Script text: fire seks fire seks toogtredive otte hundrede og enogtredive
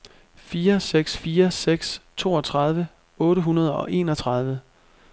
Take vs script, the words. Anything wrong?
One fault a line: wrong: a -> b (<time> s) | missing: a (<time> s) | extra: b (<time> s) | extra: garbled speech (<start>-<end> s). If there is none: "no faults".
no faults